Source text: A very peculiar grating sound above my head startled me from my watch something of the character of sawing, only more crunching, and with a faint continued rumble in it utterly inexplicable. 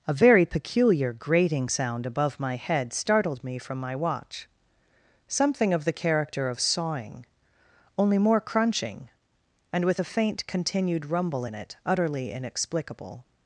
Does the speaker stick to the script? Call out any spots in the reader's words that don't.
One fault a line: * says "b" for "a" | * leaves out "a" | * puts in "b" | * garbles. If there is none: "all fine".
all fine